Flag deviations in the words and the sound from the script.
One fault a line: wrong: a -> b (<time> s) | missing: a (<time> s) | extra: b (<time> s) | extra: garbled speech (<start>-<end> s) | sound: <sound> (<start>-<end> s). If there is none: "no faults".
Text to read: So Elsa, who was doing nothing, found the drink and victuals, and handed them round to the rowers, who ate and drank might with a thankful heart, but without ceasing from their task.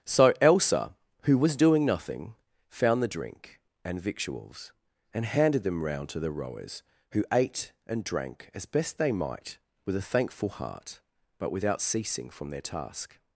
extra: as best they (8.5 s)